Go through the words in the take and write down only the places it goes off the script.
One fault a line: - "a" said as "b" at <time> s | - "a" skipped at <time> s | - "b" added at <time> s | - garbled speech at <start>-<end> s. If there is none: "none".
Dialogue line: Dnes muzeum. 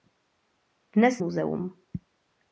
none